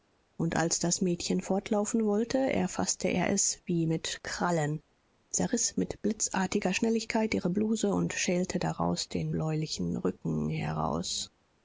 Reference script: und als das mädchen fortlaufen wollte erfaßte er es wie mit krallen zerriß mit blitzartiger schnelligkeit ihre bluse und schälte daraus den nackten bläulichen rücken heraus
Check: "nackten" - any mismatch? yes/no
yes